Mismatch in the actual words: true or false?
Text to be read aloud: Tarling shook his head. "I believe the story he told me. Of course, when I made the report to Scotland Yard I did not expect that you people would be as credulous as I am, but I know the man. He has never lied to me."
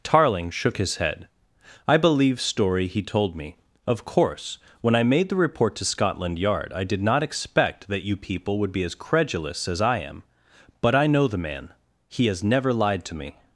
true